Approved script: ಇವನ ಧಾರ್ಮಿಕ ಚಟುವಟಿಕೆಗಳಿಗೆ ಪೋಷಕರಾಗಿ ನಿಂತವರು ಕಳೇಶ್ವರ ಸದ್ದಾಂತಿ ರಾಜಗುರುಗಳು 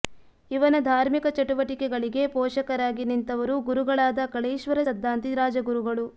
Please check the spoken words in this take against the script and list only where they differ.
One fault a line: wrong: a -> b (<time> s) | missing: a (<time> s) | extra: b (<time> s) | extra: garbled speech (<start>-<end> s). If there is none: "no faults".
extra: ಗುರುಗಳಾದ (3.7 s)